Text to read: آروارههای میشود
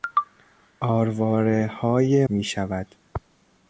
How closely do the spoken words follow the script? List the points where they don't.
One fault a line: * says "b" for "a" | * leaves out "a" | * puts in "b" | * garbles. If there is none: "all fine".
all fine